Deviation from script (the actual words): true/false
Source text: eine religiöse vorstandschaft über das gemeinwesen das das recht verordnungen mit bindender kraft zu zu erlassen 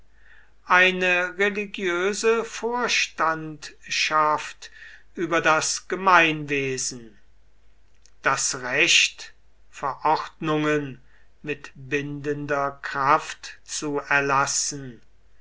true